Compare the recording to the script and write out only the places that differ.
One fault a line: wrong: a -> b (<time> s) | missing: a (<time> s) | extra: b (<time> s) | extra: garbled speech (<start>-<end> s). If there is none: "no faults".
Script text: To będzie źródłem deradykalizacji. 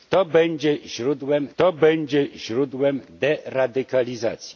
extra: to będzie źródłem (1.6 s)